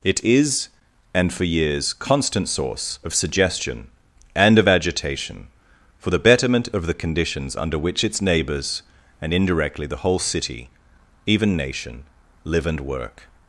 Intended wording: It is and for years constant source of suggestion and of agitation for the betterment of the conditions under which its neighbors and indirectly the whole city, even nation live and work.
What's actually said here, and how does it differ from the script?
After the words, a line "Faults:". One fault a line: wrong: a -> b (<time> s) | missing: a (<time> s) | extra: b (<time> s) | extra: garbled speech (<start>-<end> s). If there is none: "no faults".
It is and for years constant source of suggestion and of agitation for the betterment of the conditions under which its neighbors and indirectly the whole city, even nation live and work.
Faults:
no faults